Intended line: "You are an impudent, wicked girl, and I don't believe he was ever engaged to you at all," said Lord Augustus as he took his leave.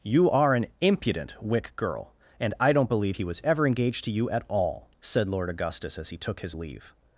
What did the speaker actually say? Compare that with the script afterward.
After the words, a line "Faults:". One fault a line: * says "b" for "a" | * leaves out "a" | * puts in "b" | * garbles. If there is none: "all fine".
"You are an impudent, wick girl, and I don't believe he was ever engaged to you at all," said Lord Augustus as he took his leave.
Faults:
* says "wick" for "wicked"